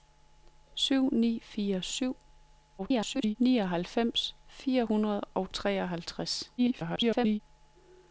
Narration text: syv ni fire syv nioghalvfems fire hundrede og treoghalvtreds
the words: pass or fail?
fail